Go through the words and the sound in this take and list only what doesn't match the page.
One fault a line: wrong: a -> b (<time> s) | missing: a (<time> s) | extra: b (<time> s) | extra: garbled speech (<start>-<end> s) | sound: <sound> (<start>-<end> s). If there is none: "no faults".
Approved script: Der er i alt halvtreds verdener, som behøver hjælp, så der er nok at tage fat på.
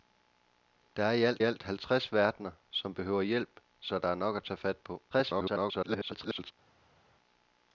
extra: alt (1.4 s)
extra: garbled speech (5.1-6.5 s)